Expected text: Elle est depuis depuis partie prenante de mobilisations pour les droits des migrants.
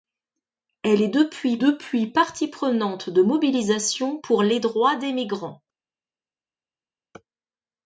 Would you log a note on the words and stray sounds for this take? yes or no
no